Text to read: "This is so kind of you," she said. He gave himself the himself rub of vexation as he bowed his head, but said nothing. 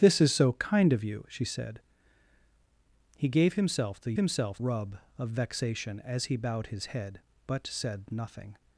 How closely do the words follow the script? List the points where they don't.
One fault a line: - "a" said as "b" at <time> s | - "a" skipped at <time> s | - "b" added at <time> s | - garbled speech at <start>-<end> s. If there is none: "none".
none